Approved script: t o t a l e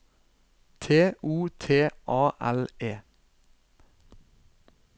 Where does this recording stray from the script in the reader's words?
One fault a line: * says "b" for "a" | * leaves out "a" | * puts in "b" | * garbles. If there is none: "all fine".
all fine